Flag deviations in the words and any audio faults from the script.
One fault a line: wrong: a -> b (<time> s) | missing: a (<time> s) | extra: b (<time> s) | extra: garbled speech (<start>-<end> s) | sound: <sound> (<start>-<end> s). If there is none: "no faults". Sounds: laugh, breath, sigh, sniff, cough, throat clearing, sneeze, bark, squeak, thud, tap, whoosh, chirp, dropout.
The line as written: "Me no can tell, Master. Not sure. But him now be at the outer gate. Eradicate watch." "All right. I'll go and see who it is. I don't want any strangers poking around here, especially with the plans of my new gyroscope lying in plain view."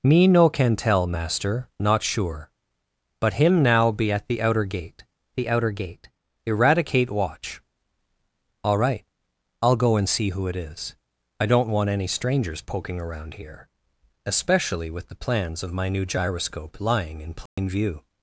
extra: the outer gate (5.3 s)
sound: dropout (17.5-17.6 s)